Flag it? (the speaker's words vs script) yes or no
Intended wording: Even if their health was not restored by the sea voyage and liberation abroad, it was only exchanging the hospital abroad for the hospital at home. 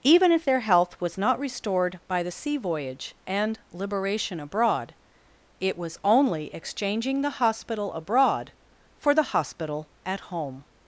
no